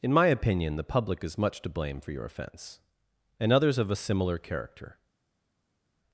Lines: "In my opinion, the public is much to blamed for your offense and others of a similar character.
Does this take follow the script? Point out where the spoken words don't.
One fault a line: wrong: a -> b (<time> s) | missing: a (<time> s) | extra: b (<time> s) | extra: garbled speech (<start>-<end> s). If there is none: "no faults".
wrong: blamed -> blame (1.7 s)